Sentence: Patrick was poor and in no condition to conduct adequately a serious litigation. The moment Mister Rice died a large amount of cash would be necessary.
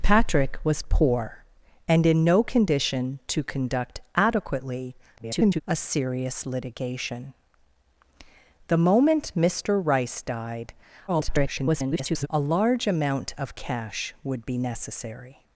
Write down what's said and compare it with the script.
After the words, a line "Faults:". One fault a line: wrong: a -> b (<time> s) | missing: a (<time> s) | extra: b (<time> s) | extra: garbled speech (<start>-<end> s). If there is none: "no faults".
Patrick was poor and in no condition to conduct adequately [garbled] a serious litigation. The moment Mister Rice died [garbled] a large amount of cash would be necessary.
Faults:
extra: garbled speech (5.2-5.6 s)
extra: garbled speech (11.1-12.3 s)